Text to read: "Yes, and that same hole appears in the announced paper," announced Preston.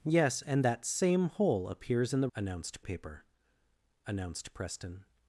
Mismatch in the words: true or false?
false